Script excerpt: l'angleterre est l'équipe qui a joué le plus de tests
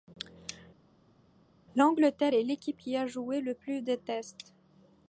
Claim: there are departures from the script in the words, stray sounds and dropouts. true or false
false